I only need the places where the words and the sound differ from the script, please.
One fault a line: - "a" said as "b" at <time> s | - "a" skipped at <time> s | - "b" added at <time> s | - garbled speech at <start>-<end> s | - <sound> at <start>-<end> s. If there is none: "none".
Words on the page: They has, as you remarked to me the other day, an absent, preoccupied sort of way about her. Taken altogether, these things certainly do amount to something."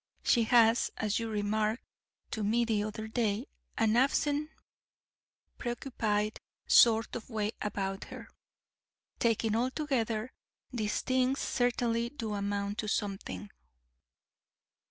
- "They" said as "She" at 0.2 s